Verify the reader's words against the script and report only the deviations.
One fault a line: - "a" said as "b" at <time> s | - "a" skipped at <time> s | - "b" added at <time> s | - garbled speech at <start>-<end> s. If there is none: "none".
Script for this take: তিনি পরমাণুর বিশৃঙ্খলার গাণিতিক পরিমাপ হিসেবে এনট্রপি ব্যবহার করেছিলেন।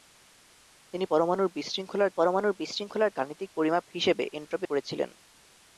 - "পরমাণুর বিশৃঙ্খলার" added at 2.1 s
- "ব্যবহার" skipped at 4.7 s